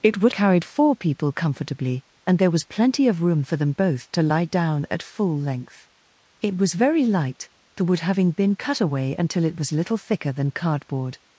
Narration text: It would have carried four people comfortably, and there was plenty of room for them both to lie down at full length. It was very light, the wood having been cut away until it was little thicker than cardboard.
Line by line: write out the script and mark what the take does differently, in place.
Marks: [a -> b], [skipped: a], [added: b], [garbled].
It would [skipped: have] carried four people comfortably, and there was plenty of room for them both to lie down at full length. It was very light, the wood having been cut away until it was little thicker than cardboard.